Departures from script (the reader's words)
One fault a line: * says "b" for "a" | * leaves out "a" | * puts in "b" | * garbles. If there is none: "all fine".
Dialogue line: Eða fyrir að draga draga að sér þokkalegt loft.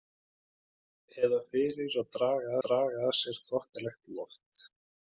all fine